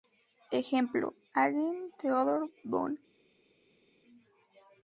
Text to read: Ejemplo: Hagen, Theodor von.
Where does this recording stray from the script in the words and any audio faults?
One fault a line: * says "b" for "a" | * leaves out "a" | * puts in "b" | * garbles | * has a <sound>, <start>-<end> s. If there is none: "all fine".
all fine